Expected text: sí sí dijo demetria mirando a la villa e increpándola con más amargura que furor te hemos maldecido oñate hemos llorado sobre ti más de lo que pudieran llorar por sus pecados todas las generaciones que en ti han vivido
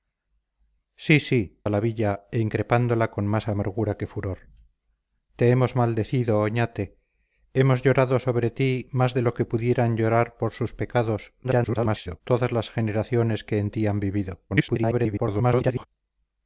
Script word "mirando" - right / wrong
wrong